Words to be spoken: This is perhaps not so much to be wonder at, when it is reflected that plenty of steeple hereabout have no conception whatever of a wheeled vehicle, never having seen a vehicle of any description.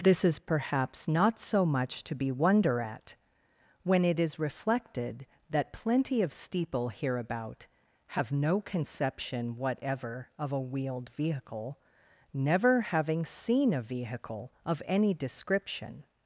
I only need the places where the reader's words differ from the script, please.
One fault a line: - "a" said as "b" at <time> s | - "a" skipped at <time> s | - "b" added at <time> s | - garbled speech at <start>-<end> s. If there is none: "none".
none